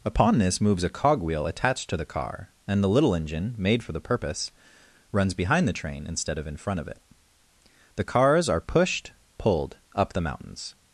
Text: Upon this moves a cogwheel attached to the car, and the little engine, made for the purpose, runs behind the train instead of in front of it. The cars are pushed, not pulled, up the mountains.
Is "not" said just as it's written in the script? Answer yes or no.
no